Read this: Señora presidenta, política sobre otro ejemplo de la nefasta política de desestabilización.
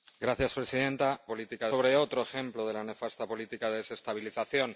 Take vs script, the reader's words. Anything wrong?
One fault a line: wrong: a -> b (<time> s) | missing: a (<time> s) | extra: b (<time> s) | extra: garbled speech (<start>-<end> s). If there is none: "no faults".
no faults